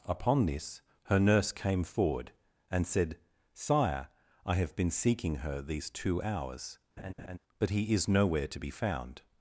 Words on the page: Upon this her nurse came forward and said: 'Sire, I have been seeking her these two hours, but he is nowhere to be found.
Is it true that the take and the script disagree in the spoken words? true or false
false